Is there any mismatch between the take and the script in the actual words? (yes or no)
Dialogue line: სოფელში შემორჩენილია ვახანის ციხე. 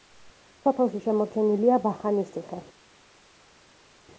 no